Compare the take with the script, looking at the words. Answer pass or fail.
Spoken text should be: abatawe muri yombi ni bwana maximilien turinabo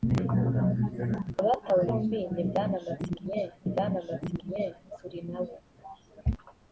fail